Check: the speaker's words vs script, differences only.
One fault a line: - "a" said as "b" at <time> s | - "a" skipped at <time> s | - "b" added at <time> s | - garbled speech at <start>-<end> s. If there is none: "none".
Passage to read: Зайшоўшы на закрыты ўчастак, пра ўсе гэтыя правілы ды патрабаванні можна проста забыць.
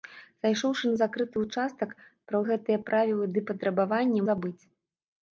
- "ўсе" skipped at 2.4 s
- "можна проста" skipped at 4.2 s